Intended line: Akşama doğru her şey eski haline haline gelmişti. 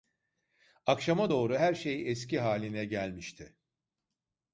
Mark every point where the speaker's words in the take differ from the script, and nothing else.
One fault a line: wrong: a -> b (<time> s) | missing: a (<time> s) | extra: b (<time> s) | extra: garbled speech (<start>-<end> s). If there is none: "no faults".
missing: haline (2.8 s)